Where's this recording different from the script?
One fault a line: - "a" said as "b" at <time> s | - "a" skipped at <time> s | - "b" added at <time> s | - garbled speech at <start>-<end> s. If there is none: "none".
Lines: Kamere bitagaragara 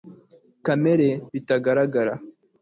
none